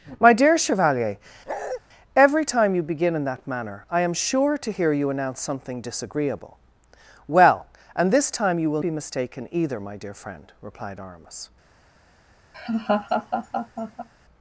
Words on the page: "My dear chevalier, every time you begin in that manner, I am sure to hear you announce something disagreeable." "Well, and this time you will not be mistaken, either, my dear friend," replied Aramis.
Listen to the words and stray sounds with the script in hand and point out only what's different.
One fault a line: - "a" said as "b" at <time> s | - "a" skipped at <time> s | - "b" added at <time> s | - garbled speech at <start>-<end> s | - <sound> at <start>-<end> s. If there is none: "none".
- bark at 1.5-1.8 s
- "not" skipped at 8.8 s
- laugh at 12.5-14.1 s